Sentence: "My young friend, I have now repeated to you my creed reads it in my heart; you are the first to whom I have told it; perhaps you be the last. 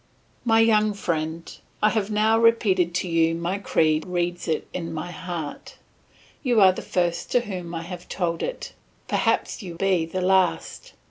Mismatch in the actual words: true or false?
false